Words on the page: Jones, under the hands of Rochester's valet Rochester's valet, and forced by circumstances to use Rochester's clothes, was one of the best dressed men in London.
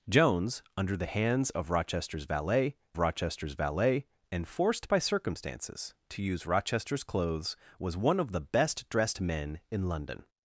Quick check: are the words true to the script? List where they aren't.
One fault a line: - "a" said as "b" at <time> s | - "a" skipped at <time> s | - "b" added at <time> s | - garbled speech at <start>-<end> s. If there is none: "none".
none